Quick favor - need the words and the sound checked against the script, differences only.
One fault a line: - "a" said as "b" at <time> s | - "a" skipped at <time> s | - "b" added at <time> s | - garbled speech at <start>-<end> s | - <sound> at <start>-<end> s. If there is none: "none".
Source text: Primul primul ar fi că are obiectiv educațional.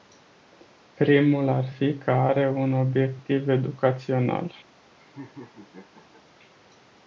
- "primul" skipped at 1.5 s
- "un" added at 2.5 s
- laugh at 5.0-6.2 s